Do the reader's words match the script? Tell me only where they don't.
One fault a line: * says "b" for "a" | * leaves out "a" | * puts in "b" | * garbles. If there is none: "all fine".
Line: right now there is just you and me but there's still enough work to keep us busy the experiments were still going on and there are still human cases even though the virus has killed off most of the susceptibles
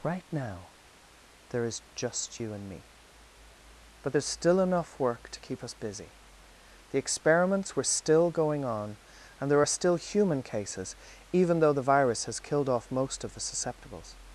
all fine